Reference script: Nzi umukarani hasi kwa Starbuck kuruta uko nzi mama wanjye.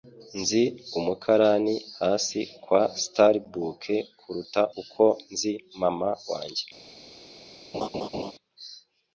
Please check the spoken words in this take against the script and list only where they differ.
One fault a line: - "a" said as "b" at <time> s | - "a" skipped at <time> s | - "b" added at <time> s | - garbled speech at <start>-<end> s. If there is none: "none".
none